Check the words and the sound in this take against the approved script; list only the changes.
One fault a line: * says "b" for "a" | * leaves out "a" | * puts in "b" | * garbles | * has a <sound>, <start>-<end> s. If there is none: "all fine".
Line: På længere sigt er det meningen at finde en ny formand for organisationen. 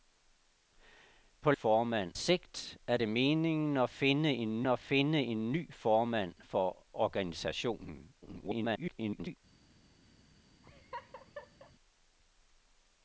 * says "formand" for "længere"
* puts in "at finde en"
* garbles
* has a laugh, 10.6-11.7 s